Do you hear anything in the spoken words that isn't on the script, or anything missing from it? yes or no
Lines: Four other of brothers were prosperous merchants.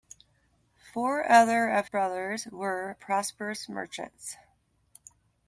no